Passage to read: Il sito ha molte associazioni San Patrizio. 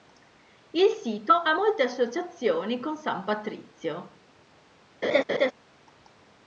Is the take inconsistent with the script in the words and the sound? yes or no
yes